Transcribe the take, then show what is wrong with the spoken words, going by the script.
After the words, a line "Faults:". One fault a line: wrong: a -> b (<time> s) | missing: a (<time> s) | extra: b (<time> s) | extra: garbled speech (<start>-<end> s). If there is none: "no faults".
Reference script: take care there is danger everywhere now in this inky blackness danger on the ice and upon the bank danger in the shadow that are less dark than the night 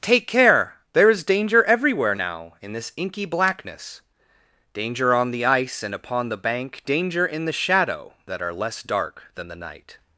take care there is danger everywhere now in this inky blackness danger on the ice and upon the bank danger in the shadow that are less dark than the night
Faults:
no faults